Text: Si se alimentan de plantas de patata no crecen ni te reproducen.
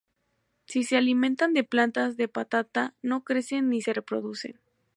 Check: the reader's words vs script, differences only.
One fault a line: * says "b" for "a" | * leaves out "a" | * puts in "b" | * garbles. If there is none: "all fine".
* says "se" for "te"